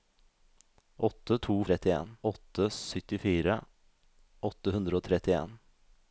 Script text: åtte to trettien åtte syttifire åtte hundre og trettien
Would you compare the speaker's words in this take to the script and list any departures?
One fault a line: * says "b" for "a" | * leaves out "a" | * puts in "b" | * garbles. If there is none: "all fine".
all fine